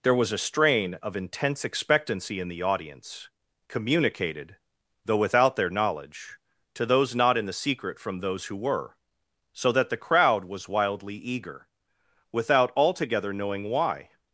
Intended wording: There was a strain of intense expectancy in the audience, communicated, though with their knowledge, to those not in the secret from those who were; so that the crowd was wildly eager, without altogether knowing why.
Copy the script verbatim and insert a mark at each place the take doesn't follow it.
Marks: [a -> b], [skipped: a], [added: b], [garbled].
There was a strain of intense expectancy in the audience, communicated, though [with -> without] their knowledge, to those not in the secret from those who were; so that the crowd was wildly eager, without altogether knowing why.